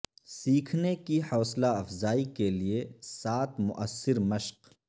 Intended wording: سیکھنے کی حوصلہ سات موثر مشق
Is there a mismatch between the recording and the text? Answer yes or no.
yes